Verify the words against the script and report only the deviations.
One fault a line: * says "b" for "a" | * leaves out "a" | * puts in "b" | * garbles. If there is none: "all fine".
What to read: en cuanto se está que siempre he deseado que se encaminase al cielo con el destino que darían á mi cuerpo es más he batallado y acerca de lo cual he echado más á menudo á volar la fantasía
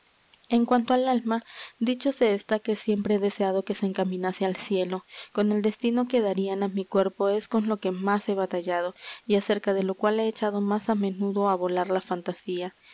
* puts in "al alma dicho"
* puts in "con lo que"